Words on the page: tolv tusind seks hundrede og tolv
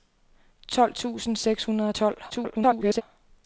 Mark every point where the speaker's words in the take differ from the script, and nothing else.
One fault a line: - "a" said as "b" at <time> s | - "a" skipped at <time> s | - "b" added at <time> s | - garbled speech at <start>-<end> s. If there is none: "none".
- garbled speech at 2.3-3.0 s